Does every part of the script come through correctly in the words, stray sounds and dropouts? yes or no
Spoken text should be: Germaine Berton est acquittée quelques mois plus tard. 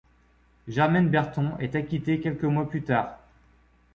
yes